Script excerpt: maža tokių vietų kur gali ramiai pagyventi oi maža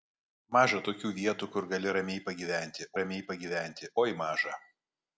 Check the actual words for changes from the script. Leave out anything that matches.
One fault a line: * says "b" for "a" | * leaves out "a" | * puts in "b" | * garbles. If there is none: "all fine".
* puts in "ramiai pagyventi"